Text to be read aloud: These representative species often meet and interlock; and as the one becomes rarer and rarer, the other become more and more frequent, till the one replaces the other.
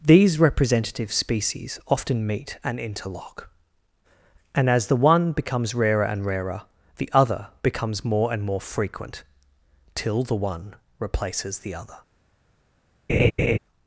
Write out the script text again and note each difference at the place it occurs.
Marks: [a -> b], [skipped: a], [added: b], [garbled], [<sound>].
These representative species often meet and interlock; and as the one becomes rarer and rarer, the other [become -> becomes] more and more frequent, till the one replaces the other. [laugh]